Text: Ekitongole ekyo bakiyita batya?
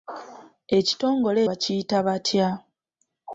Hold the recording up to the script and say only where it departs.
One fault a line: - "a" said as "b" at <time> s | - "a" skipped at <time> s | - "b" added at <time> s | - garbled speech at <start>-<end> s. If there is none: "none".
- "ekyo" skipped at 1.4 s